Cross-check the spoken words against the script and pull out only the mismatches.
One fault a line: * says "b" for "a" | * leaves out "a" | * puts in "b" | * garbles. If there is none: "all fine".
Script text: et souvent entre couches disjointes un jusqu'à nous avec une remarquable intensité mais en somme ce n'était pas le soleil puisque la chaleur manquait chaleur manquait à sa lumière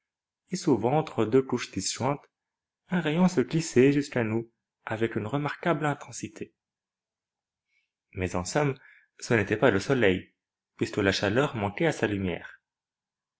* puts in "deux"
* puts in "rayon se glissait"
* leaves out "chaleur manquait"